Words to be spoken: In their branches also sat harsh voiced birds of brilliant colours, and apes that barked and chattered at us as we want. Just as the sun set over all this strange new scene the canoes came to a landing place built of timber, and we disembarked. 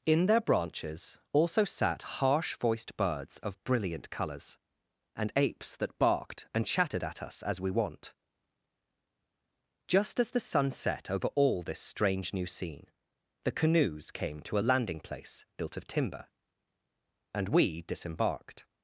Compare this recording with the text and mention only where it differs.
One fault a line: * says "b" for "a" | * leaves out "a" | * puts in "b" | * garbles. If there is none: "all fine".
all fine